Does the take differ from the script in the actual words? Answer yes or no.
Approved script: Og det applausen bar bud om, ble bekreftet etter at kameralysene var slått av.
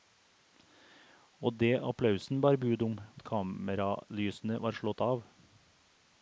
yes